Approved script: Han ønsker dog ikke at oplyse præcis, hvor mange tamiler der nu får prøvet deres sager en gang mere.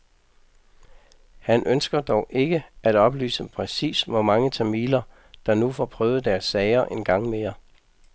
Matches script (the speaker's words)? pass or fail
pass